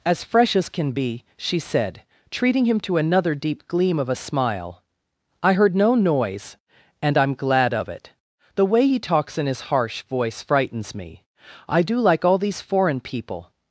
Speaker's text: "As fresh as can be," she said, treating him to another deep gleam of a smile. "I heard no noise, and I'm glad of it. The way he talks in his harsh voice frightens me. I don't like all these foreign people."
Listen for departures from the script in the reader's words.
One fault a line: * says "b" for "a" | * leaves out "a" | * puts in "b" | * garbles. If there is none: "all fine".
* says "do" for "don't"